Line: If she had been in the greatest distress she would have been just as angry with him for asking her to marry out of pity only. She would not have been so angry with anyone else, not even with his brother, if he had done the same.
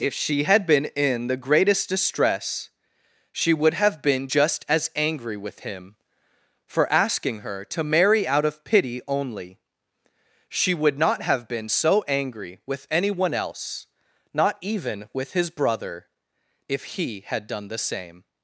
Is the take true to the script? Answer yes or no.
yes